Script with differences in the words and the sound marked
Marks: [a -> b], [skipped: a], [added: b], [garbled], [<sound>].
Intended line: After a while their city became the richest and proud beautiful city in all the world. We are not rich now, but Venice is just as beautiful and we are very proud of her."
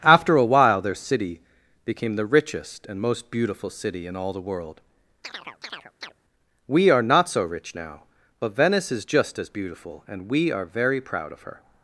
After a while their city became the richest and [proud -> most] beautiful city in all the world. [chirp] We are not [added: so] rich now, but Venice is just as beautiful and we are very proud of her."